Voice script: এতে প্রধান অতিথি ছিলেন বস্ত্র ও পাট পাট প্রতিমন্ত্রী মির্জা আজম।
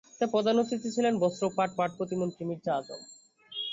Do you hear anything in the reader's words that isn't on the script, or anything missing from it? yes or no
no